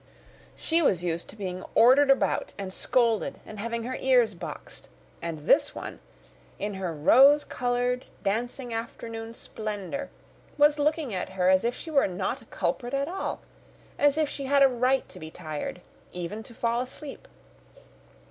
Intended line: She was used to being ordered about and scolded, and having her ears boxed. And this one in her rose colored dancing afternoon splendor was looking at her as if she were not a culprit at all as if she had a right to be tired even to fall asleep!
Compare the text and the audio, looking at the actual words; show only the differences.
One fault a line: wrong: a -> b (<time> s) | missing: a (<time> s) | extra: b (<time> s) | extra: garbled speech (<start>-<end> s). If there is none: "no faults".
no faults